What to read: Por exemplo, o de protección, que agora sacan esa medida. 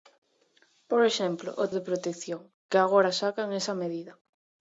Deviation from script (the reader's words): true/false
false